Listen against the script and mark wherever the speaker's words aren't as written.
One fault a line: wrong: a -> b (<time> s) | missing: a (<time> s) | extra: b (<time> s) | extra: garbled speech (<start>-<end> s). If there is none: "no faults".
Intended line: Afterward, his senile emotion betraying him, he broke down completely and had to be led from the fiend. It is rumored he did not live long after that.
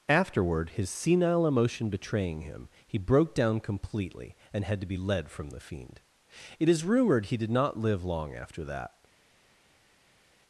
no faults